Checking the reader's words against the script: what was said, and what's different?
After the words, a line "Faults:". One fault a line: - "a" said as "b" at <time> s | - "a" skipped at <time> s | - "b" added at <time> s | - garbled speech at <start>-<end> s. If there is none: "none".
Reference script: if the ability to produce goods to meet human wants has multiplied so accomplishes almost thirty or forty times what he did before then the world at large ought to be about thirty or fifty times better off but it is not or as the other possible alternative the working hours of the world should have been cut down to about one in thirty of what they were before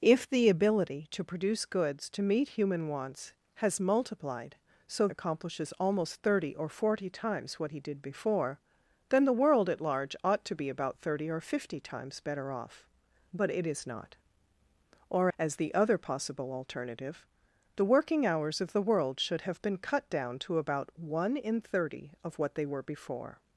if the ability to produce goods to meet human wants has multiplied so accomplishes almost thirty or forty times what he did before then the world at large ought to be about thirty or fifty times better off but it is not or as the other possible alternative the working hours of the world should have been cut down to about one in thirty of what they were before
Faults:
none